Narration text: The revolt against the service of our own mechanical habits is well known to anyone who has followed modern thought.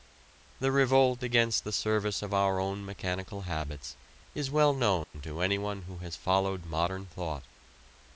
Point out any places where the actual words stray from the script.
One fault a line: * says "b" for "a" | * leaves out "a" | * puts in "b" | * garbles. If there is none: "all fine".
all fine